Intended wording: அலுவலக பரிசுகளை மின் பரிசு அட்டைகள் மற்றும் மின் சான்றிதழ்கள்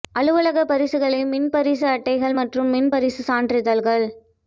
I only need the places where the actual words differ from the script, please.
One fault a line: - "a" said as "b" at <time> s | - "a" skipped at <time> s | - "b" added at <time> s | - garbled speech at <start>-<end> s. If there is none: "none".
- "பரிசு" added at 2.9 s